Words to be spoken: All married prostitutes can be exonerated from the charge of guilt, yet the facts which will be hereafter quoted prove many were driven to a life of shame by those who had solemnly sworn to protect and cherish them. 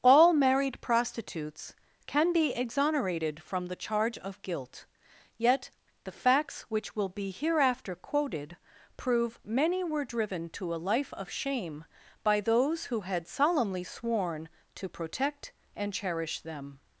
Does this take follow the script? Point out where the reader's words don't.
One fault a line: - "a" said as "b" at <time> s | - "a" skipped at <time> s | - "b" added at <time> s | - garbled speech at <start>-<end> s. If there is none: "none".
none